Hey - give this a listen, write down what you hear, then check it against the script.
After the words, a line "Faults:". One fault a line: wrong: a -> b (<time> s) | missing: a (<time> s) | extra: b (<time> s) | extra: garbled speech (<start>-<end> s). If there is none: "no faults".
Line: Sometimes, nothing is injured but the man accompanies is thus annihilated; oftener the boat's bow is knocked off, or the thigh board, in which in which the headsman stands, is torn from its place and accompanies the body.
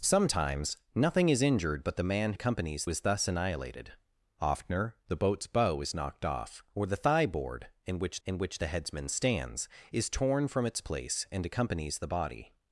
Sometimes, nothing is injured but the man accompanies is thus annihilated; oftener the boat's bow is knocked off, or the thigh board, in which in which the headsman stands, is torn from its place and accompanies the body.
Faults:
no faults